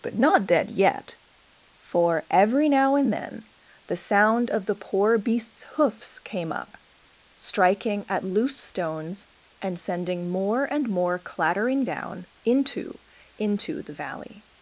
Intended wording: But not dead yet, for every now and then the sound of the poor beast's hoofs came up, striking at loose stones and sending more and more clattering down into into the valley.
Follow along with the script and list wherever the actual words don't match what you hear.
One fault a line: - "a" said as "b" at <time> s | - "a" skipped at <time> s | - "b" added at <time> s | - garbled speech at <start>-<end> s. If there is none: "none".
none